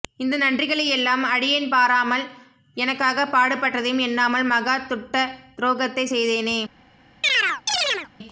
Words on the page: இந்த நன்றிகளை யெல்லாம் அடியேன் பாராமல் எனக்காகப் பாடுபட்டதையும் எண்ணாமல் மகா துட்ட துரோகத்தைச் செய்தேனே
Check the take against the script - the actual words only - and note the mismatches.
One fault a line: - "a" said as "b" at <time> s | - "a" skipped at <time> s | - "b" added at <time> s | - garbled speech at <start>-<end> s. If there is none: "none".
none